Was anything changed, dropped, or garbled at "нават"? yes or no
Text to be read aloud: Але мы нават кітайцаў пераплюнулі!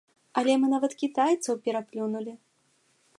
no